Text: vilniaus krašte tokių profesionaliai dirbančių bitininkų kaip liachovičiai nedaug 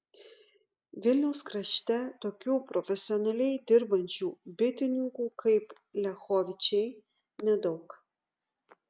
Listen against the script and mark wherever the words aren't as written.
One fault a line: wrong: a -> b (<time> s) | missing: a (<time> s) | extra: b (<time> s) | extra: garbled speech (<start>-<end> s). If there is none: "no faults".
no faults